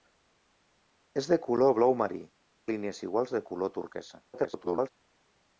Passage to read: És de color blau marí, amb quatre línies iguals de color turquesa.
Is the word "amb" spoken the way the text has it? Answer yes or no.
no